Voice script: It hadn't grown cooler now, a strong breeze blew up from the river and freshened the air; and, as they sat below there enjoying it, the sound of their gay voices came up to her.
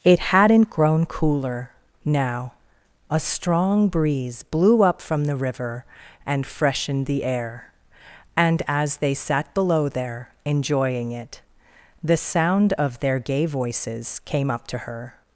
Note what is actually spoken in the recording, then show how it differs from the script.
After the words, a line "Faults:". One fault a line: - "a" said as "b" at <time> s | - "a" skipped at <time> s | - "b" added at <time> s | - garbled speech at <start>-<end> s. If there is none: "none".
It hadn't grown cooler now, a strong breeze blew up from the river and freshened the air; and, as they sat below there enjoying it, the sound of their gay voices came up to her.
Faults:
none